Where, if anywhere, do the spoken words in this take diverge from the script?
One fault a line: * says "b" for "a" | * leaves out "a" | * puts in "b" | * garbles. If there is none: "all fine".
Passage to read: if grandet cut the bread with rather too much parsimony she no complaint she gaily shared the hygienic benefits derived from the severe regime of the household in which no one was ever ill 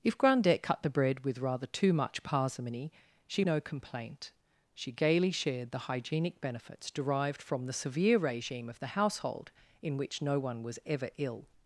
all fine